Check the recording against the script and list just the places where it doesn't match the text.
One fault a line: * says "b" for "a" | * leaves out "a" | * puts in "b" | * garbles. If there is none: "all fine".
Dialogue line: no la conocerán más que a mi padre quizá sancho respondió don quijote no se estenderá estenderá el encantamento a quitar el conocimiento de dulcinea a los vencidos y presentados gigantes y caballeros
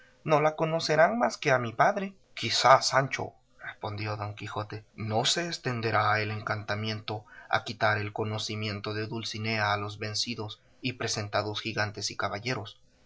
* leaves out "estenderá"